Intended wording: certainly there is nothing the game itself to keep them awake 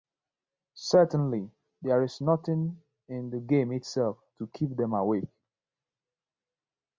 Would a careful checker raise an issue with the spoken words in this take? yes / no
yes